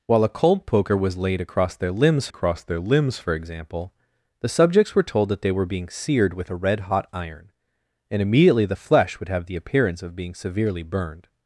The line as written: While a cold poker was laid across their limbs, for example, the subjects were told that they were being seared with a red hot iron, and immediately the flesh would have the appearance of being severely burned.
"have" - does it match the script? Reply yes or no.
yes